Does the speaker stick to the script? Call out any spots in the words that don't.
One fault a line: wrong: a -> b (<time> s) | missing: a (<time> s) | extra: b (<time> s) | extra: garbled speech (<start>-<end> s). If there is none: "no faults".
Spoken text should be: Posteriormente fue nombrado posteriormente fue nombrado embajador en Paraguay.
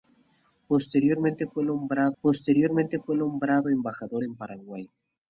no faults